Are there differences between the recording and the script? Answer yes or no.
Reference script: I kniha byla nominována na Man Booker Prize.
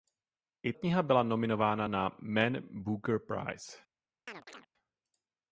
no